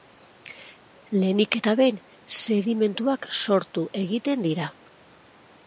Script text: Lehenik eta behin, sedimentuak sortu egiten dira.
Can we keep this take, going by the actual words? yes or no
yes